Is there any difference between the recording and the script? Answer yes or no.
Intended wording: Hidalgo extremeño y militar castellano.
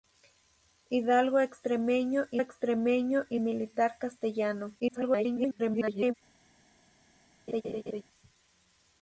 yes